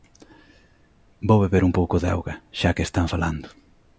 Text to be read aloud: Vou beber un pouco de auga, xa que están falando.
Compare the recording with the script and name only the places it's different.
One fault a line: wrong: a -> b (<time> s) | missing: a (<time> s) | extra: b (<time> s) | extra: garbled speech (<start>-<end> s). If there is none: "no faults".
no faults